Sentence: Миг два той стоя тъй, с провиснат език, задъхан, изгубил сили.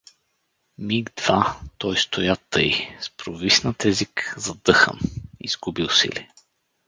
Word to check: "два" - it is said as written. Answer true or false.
true